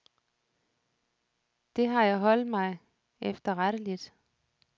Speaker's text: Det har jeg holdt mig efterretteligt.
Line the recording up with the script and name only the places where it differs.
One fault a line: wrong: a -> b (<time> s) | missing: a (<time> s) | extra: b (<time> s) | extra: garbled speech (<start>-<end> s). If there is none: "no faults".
no faults